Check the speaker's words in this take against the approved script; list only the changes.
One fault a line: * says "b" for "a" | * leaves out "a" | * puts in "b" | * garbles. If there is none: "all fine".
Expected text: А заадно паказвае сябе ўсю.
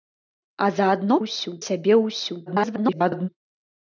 * says "ўсю" for "паказвае"
* garbles